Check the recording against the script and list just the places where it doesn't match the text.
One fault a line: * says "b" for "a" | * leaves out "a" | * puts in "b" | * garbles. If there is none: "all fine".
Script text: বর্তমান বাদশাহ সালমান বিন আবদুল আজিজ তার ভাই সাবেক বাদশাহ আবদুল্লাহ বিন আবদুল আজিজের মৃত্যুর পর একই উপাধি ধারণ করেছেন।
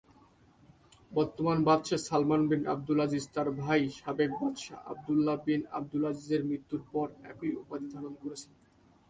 all fine